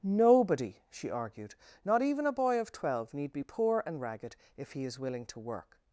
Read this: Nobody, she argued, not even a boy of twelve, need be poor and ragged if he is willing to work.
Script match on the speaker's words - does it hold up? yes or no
yes